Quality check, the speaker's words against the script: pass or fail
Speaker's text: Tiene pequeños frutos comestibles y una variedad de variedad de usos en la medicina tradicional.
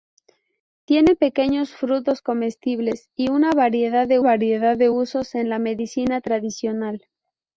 pass